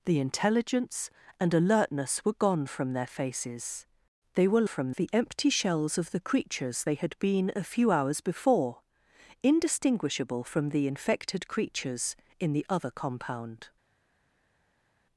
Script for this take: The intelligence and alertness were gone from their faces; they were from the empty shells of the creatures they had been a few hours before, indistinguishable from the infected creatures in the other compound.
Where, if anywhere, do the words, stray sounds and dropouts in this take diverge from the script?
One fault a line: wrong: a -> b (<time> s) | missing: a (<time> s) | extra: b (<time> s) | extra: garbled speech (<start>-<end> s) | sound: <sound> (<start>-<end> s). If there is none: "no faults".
no faults